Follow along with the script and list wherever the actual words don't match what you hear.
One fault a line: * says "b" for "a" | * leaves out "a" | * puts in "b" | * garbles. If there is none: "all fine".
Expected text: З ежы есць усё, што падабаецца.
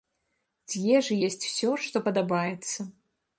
all fine